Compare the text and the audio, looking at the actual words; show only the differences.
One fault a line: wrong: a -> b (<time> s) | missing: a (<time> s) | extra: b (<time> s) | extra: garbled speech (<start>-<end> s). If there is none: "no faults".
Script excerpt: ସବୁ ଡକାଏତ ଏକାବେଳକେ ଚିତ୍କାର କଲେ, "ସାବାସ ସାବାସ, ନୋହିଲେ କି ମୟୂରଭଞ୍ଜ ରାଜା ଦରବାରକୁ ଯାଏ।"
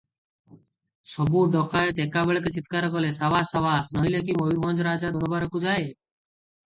no faults